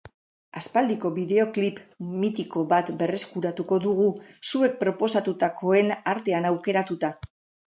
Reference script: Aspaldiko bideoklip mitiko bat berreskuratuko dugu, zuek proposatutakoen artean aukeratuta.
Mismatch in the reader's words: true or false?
false